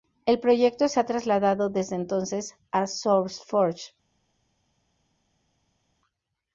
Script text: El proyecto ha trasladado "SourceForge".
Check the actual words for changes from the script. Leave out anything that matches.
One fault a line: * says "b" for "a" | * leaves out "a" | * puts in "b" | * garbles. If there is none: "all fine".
* puts in "se"
* puts in "desde entonces a"